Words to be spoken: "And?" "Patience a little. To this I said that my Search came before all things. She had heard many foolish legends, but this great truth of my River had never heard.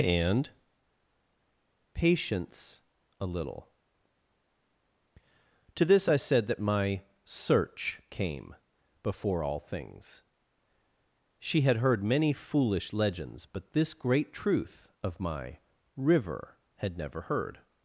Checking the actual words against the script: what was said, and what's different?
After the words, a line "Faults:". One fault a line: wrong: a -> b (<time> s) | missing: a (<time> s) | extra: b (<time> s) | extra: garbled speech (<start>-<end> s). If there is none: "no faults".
"And?" "Patience a little. To this I said that my Search came before all things. She had heard many foolish legends, but this great truth of my River had never heard.
Faults:
no faults